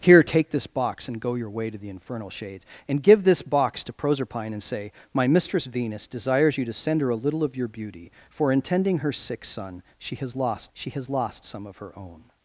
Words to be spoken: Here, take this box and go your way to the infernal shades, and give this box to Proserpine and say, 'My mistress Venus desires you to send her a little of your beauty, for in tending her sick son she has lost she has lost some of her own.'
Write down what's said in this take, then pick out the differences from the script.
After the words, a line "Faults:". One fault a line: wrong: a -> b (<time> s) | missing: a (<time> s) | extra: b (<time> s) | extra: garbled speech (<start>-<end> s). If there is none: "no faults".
Here, take this box and go your way to the infernal shades, and give this box to Proserpine and say, 'My mistress Venus desires you to send her a little of your beauty, for in tending her sick son she has lost she has lost some of her own.'
Faults:
no faults